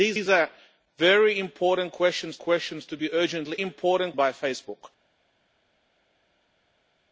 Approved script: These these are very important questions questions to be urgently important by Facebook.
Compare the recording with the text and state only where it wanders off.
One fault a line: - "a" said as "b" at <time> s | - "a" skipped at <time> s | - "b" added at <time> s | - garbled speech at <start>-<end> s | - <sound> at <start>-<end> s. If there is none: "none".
none